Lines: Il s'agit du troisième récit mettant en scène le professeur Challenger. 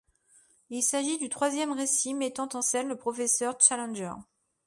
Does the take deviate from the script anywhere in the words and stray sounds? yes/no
no